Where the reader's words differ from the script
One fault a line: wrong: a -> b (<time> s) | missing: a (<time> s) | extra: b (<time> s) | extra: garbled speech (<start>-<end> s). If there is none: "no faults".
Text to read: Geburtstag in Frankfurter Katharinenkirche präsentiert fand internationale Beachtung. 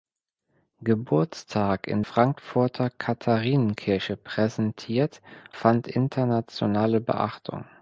no faults